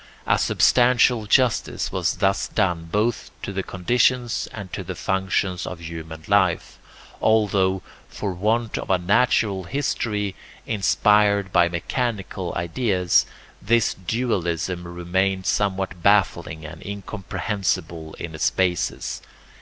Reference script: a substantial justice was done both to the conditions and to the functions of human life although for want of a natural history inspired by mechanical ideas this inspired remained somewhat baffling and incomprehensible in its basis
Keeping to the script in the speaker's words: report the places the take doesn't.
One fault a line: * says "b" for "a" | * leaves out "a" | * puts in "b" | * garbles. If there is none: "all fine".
* puts in "thus"
* says "dualism" for "inspired"